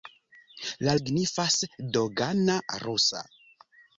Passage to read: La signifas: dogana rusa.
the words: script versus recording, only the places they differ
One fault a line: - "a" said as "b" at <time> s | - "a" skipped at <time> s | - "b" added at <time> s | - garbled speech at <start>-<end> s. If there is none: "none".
none